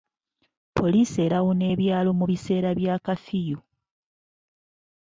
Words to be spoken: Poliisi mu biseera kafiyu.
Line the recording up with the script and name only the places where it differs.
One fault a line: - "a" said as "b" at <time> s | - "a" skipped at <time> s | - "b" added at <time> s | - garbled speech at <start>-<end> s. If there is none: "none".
- "erawuna ebyalo" added at 1.2 s
- "bya" added at 2.8 s